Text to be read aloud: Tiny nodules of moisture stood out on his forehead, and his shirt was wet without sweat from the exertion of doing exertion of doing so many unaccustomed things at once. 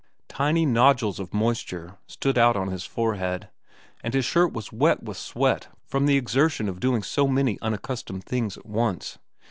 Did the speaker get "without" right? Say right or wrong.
wrong